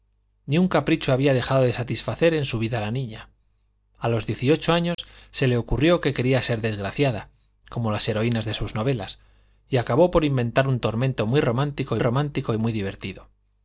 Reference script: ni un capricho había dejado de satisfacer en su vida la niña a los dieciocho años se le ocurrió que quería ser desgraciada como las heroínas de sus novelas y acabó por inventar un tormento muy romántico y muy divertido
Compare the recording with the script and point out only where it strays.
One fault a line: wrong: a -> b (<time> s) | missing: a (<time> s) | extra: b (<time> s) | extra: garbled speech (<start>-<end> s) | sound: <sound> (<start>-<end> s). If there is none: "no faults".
sound: dropout (4.9-5.0 s)
extra: romántico (12.0 s)